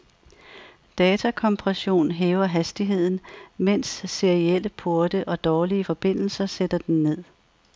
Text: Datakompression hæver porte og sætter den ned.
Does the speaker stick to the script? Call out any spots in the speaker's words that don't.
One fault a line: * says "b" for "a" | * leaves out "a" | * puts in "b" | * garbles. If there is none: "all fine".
* puts in "hastigheden mens serielle"
* puts in "dårlige forbindelser"